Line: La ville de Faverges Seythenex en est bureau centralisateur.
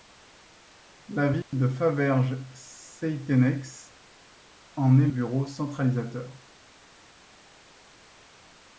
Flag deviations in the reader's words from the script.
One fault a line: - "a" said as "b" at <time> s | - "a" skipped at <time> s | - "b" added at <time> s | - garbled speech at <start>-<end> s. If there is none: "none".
none